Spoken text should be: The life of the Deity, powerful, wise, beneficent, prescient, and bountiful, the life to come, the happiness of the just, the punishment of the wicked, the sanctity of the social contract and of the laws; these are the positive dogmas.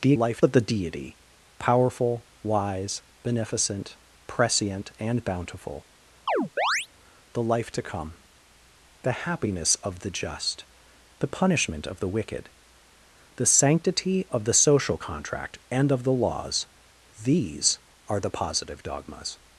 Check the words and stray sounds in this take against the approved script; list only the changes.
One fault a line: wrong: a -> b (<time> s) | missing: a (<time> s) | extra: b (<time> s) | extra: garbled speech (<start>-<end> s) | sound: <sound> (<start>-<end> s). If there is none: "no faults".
sound: chirp (6.3-6.9 s)